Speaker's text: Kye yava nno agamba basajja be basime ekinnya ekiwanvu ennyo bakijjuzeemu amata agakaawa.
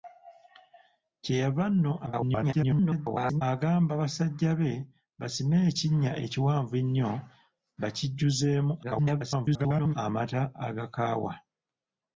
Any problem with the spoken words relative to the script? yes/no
yes